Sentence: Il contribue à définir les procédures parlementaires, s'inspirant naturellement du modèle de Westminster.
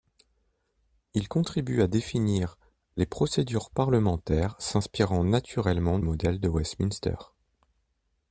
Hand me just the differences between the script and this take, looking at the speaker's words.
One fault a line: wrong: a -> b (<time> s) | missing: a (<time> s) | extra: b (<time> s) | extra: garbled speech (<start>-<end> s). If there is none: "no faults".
missing: du (6.0 s)